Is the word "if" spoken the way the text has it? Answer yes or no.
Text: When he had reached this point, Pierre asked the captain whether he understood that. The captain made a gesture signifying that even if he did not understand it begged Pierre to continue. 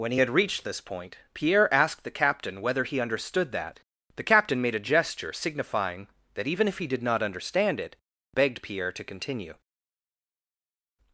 yes